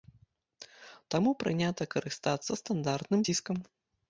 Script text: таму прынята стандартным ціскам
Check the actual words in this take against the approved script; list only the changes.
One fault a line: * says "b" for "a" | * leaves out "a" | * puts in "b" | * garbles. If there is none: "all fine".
* puts in "карыстацца"